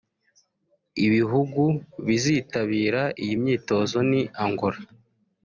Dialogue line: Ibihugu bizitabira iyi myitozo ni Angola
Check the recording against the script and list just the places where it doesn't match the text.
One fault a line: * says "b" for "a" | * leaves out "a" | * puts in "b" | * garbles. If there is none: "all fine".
all fine